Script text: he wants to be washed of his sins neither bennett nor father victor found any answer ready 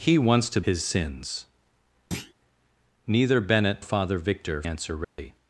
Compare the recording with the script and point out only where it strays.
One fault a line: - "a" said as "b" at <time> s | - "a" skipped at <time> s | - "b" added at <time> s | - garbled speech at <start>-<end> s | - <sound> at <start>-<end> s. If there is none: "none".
- "be washed of" skipped at 0.6 s
- thud at 2.1-2.3 s
- "nor" skipped at 3.8 s
- "found any" skipped at 4.6 s
- dropout at 5.0-5.2 s